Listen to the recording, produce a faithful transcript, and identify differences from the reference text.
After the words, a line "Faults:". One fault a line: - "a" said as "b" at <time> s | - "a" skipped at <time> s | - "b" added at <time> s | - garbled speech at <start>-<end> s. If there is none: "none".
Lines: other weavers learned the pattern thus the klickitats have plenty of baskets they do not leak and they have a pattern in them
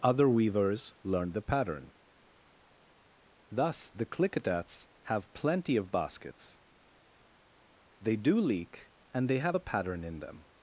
other weavers learned the pattern thus the klickitats have plenty of baskets they do leak and they have a pattern in them
Faults:
- "not" skipped at 8.4 s